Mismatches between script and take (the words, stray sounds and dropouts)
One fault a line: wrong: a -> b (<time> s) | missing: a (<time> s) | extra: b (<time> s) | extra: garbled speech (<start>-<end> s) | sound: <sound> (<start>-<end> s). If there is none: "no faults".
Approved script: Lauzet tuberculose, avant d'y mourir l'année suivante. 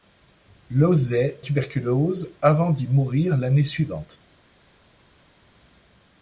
no faults